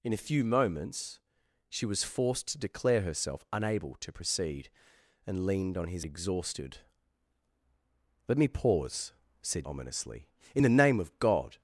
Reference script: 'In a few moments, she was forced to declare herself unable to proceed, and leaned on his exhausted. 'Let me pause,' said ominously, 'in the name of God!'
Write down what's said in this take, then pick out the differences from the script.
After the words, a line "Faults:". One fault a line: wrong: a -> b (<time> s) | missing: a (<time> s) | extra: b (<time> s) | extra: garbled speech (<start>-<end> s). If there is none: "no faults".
'In a few moments, she was forced to declare herself unable to proceed, and leaned on his exhausted. 'Let me pause,' said ominously, 'in the name of God!'
Faults:
no faults